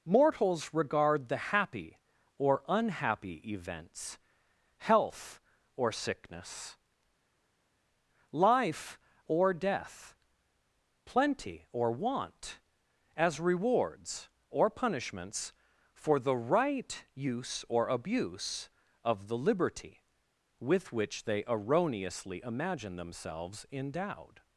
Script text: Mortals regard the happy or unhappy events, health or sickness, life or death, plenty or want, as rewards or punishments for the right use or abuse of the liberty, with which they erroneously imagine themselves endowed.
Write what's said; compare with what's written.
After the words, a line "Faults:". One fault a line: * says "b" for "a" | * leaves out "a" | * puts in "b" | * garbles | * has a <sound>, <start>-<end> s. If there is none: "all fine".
Mortals regard the happy or unhappy events, health or sickness, life or death, plenty or want, as rewards or punishments for the right use or abuse of the liberty, with which they erroneously imagine themselves endowed.
Faults:
all fine